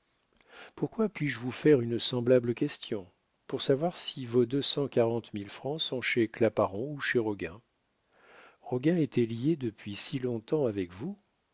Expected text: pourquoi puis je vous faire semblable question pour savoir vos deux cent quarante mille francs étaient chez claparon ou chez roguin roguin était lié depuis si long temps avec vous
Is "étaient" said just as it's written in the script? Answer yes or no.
no